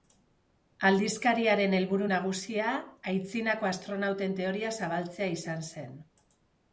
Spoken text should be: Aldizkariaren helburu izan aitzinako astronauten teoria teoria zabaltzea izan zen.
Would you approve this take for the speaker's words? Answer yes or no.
no